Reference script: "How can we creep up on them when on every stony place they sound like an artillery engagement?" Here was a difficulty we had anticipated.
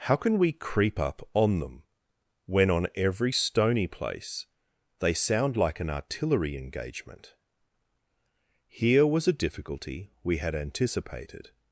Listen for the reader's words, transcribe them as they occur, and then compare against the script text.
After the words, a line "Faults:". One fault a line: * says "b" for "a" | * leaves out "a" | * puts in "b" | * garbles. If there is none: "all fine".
"How can we creep up on them when on every stony place they sound like an artillery engagement?" Here was a difficulty we had anticipated.
Faults:
all fine